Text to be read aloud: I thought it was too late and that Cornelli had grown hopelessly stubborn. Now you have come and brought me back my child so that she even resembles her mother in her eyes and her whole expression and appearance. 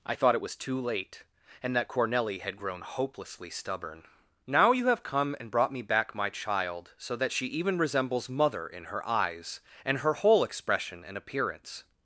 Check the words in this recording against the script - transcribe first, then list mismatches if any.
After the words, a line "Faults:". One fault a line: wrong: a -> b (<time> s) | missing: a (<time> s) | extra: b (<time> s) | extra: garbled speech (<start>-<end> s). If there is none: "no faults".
I thought it was too late and that Cornelli had grown hopelessly stubborn. Now you have come and brought me back my child so that she even resembles mother in her eyes and her whole expression and appearance.
Faults:
missing: her (8.3 s)